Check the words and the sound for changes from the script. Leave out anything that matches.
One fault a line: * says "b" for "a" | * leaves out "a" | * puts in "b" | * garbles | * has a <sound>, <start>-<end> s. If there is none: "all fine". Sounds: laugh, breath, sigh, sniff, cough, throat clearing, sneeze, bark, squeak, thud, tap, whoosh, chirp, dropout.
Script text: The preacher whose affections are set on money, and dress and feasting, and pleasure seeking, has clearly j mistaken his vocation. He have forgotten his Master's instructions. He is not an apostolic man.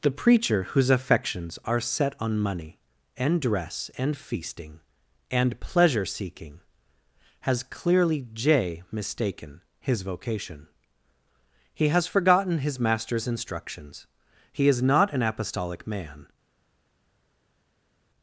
* says "has" for "have"